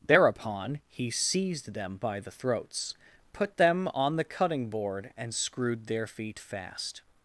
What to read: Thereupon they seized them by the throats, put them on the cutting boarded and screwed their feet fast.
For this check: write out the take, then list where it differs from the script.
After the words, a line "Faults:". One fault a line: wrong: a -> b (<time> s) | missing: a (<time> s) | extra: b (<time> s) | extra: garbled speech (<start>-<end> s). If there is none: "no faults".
Thereupon he seized them by the throats, put them on the cutting board and screwed their feet fast.
Faults:
wrong: they -> he (0.9 s)
wrong: boarded -> board (4.7 s)